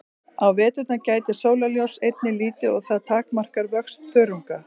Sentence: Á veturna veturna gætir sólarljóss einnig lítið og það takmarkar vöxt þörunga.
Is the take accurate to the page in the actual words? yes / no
no